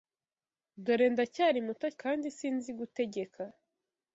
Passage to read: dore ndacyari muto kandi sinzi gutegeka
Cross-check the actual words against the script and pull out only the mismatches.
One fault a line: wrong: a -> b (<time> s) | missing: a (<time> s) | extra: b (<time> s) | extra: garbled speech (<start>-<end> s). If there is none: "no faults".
no faults